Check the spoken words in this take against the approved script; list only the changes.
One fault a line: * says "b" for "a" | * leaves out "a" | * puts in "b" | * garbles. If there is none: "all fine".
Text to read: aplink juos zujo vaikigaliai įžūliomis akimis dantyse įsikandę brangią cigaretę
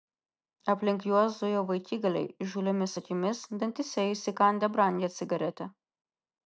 all fine